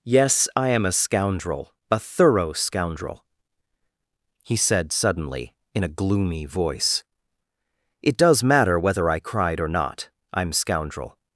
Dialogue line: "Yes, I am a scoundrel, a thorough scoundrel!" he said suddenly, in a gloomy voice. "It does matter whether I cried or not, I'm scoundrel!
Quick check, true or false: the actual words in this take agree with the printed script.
true